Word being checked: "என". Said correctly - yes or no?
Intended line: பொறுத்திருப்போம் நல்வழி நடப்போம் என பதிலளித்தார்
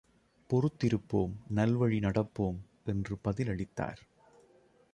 no